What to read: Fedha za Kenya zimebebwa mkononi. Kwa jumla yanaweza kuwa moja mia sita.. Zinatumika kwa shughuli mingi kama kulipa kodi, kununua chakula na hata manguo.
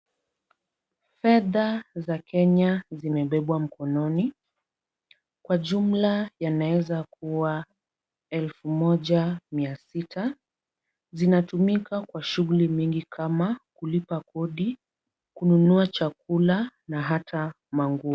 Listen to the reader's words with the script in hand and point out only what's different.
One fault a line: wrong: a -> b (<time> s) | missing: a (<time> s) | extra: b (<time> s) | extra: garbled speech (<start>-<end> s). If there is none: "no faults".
extra: elfu (8.3 s)